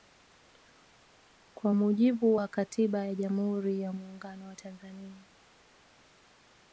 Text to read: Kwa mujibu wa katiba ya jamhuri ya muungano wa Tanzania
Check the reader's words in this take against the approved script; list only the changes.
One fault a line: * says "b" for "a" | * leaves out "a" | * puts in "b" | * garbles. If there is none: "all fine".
all fine